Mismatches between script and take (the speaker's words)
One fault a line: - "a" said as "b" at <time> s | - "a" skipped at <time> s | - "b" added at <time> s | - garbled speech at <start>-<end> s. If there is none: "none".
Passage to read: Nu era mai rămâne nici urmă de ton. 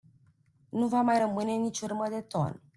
- "era" said as "va" at 0.9 s